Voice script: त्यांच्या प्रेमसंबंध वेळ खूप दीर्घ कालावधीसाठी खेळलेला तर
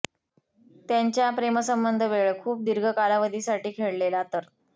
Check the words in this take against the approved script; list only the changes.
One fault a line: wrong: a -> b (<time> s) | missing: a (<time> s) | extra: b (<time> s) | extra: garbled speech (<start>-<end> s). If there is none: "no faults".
no faults